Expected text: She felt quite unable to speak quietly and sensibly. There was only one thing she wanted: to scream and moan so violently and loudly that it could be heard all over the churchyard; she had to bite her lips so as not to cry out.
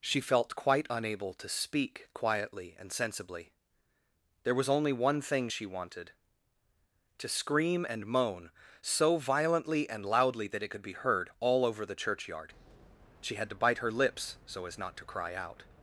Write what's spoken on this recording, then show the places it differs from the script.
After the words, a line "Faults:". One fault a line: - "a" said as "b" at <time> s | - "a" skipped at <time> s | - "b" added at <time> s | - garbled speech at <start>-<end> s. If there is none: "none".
She felt quite unable to speak quietly and sensibly. There was only one thing she wanted: to scream and moan so violently and loudly that it could be heard all over the churchyard; she had to bite her lips so as not to cry out.
Faults:
none